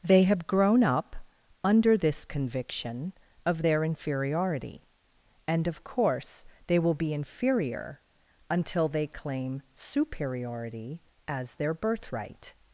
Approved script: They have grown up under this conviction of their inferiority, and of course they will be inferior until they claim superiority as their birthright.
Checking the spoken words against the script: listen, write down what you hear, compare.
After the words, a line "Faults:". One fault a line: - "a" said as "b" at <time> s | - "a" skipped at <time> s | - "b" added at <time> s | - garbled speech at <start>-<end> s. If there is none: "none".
They have grown up under this conviction of their inferiority, and of course they will be inferior until they claim superiority as their birthright.
Faults:
none